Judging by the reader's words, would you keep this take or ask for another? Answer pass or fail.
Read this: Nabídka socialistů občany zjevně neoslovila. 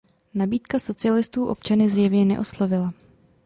pass